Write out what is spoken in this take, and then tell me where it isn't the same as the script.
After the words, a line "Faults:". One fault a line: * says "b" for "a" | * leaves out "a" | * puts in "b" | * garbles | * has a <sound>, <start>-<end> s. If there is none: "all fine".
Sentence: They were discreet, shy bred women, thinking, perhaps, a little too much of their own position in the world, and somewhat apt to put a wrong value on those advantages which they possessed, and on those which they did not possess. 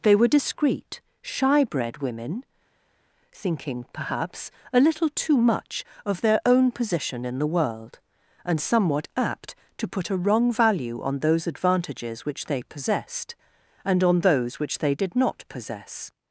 They were discreet, shy bred women, thinking, perhaps, a little too much of their own position in the world, and somewhat apt to put a wrong value on those advantages which they possessed, and on those which they did not possess.
Faults:
all fine